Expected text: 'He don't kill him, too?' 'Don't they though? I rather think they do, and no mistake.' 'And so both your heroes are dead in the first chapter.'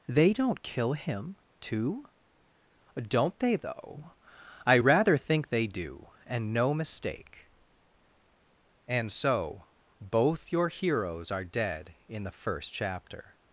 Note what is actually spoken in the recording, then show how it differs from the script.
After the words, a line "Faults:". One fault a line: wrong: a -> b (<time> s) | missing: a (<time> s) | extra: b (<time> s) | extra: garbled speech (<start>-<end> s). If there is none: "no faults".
'They don't kill him, too?' 'Don't they though? I rather think they do, and no mistake.' 'And so both your heroes are dead in the first chapter.'
Faults:
wrong: He -> They (0.1 s)